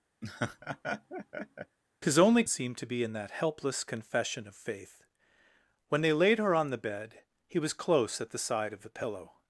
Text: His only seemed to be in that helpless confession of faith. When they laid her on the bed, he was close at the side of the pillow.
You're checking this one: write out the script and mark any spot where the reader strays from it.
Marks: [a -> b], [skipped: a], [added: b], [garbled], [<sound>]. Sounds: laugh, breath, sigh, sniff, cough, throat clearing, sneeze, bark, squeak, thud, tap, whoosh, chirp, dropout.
[laugh] His only seemed to be in that helpless confession of faith. When they laid her on the bed, he was close at the side of the pillow.